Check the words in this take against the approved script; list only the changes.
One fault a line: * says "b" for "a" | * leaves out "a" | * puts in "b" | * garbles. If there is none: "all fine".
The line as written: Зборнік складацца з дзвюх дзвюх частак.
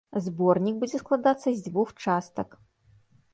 * puts in "будзе"
* leaves out "дзвюх"